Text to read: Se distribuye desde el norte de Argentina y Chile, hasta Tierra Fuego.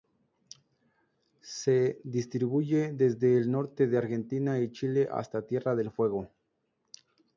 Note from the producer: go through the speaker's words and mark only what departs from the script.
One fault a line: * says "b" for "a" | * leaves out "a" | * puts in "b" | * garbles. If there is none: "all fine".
* puts in "del"